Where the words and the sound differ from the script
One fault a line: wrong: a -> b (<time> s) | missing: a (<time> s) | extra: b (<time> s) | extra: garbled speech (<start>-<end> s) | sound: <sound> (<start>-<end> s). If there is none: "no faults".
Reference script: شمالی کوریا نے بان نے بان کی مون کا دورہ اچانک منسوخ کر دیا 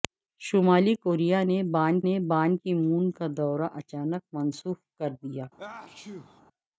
sound: sneeze (5.6-6.4 s)